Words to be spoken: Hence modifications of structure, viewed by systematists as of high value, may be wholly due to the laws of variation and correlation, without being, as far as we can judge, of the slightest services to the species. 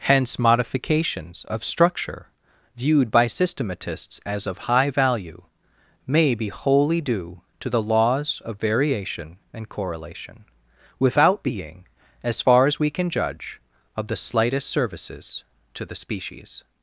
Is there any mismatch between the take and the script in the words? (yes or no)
no